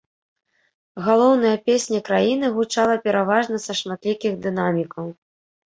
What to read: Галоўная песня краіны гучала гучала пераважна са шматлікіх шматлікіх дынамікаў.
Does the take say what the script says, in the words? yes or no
no